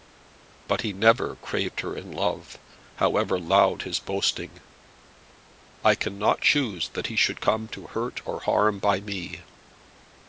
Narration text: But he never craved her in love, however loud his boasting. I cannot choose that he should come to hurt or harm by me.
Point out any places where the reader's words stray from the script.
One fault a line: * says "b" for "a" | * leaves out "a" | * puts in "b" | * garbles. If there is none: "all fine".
all fine